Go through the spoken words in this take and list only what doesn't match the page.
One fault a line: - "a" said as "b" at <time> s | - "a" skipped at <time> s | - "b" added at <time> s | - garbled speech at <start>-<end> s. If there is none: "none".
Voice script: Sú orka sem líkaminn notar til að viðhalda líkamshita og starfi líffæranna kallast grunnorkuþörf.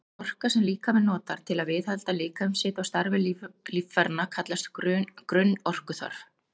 none